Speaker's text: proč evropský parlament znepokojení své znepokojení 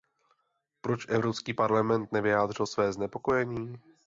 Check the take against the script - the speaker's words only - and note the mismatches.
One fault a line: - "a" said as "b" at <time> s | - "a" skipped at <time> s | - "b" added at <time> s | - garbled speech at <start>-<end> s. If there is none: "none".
- "znepokojení" said as "nevyjádřil" at 2.1 s